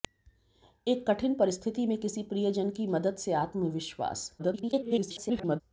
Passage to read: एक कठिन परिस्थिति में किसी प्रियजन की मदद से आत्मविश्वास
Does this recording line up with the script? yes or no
no